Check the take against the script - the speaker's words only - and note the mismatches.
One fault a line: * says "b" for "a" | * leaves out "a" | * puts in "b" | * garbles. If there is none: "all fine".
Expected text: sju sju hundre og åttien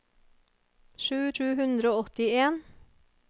all fine